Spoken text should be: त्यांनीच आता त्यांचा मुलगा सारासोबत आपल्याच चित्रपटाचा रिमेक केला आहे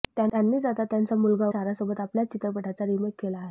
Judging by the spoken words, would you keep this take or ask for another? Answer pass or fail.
pass